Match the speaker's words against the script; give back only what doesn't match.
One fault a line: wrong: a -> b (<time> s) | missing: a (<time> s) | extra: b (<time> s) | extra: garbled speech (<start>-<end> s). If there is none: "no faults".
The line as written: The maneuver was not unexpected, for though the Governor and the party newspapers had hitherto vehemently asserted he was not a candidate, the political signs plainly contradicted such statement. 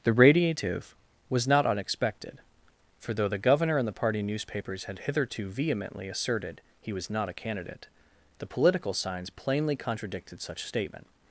wrong: maneuver -> radiative (0.1 s)